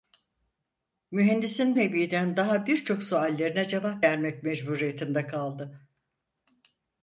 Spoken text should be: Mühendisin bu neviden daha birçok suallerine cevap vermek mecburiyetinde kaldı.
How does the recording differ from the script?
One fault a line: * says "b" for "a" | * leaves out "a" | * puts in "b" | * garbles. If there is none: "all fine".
* leaves out "bu"